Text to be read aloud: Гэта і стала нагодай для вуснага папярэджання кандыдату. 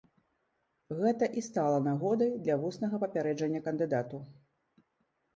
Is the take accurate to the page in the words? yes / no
yes